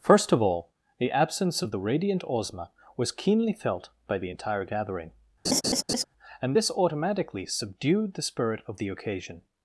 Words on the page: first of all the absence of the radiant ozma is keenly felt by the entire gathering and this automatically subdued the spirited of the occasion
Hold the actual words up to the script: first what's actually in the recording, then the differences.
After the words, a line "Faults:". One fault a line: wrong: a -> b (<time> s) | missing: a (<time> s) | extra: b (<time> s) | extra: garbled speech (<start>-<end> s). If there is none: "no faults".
first of all the absence of the radiant ozma was keenly felt by the entire gathering and this automatically subdued the spirit of the occasion
Faults:
wrong: is -> was (2.9 s)
wrong: spirited -> spirit (8.2 s)